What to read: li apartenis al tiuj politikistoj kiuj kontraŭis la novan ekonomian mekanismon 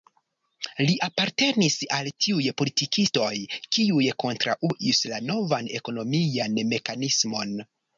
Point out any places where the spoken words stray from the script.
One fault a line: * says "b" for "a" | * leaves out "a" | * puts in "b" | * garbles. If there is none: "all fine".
all fine